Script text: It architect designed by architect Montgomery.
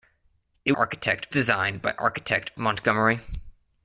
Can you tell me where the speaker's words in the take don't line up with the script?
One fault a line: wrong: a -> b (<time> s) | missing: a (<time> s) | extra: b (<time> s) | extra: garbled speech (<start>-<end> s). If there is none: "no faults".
no faults